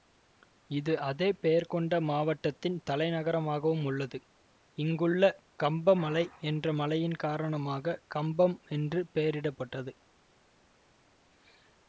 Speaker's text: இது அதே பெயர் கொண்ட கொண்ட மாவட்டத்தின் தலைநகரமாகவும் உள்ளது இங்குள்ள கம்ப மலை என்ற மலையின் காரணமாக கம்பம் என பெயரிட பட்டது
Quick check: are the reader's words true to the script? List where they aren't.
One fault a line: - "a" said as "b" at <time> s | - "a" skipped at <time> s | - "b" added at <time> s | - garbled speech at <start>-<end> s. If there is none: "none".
- "கொண்ட" skipped at 2.0 s
- "என" said as "என்று" at 8.7 s